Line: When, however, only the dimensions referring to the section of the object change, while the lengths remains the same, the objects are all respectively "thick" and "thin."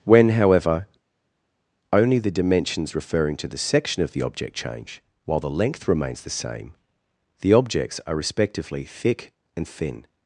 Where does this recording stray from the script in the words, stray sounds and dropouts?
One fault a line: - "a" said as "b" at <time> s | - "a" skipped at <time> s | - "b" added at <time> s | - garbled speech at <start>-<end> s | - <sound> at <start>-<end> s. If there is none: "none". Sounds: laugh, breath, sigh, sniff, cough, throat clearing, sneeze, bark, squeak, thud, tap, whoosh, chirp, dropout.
- "lengths" said as "length" at 5.5 s
- "all" skipped at 8.1 s